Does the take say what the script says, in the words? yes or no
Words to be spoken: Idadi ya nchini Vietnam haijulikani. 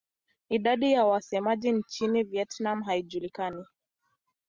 no